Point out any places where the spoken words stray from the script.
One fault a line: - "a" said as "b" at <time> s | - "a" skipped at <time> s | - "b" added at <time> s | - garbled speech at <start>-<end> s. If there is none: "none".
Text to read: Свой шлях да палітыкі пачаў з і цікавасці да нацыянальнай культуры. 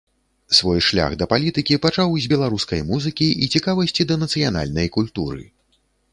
- "беларускай музыкі" added at 2.3 s